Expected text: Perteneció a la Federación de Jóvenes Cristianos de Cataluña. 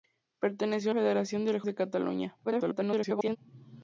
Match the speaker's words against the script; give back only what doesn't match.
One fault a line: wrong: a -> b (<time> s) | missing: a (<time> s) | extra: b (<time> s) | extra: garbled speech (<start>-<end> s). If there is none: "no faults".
missing: la (0.9 s)
missing: Jóvenes Cristianos (1.6 s)
extra: garbled speech (2.4-3.4 s)